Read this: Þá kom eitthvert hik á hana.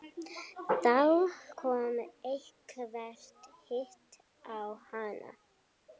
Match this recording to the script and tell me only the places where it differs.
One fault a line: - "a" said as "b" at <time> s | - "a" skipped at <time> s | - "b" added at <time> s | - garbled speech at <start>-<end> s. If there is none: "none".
none